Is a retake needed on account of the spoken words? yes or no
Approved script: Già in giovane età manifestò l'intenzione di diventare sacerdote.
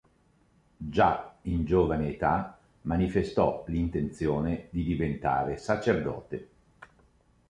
no